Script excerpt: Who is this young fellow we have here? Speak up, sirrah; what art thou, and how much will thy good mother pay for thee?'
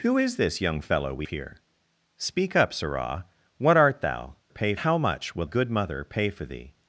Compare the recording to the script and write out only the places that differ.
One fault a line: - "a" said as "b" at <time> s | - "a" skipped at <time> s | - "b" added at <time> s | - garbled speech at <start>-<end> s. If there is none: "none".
- "have" skipped at 1.3 s
- "and" said as "pay" at 4.5 s
- "thy" skipped at 5.5 s